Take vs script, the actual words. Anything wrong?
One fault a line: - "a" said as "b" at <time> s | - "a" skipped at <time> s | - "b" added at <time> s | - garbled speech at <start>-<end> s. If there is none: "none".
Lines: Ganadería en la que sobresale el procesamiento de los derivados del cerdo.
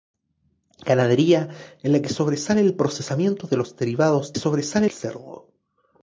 - "del" said as "sobresale" at 4.3 s